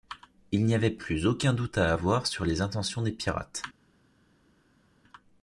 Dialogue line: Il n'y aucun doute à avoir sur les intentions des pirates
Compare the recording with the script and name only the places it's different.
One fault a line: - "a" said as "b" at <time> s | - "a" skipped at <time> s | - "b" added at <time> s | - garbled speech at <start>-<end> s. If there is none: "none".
- "avait plus" added at 0.7 s